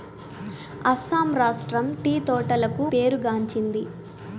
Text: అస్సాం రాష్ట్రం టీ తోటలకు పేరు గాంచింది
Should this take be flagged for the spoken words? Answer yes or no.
no